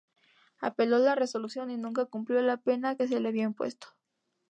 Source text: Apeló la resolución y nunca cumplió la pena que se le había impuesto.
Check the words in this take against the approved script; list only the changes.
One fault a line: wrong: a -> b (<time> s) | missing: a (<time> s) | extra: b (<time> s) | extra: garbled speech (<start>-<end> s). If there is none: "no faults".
no faults